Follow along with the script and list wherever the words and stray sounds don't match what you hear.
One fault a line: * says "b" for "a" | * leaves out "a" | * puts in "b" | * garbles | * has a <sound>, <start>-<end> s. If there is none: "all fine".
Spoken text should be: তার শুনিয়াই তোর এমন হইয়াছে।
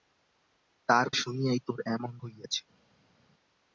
all fine